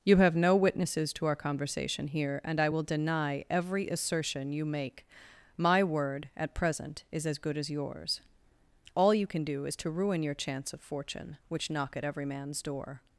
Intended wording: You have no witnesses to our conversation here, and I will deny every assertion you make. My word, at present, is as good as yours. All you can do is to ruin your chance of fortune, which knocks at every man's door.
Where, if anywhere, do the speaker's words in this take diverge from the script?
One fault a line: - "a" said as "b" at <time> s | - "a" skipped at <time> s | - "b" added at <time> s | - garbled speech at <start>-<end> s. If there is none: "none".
- "knocks" said as "knock" at 11.7 s